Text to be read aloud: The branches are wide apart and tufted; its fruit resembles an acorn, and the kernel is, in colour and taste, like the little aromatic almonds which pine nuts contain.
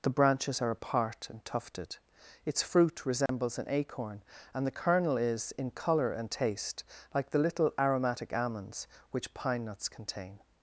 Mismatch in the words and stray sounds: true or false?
true